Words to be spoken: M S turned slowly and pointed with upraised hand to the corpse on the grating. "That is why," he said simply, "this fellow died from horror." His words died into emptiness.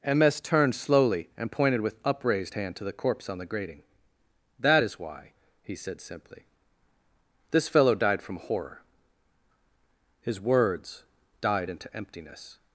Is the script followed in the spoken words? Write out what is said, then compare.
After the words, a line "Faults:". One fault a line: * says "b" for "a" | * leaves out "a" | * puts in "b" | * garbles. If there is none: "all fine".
M S turned slowly and pointed with upraised hand to the corpse on the grating. "That is why," he said simply, "this fellow died from horror." His words died into emptiness.
Faults:
all fine